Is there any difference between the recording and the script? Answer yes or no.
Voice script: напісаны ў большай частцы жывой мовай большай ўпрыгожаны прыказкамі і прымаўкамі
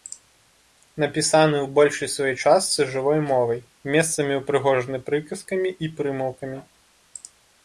yes